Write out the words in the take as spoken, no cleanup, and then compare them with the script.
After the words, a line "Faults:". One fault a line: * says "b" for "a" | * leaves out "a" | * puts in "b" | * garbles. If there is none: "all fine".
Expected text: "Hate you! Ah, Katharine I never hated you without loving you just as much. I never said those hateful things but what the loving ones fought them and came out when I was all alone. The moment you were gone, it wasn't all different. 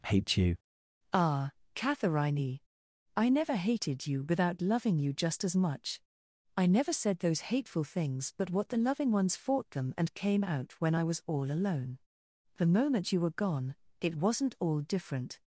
"Hate you! Ah, Katharine I never hated you without loving you just as much. I never said those hateful things but what the loving ones fought them and came out when I was all alone. The moment you were gone, it wasn't all different.
Faults:
all fine